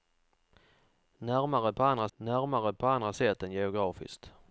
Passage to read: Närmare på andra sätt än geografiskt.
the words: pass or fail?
fail